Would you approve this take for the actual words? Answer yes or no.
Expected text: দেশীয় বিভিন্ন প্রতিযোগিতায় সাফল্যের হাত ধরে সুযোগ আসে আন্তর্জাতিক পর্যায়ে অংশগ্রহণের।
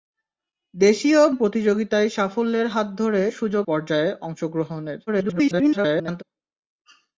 no